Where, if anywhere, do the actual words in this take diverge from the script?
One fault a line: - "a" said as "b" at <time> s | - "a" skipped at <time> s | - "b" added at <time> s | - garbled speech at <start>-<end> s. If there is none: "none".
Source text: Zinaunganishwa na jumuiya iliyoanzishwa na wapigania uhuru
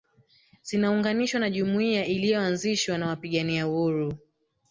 none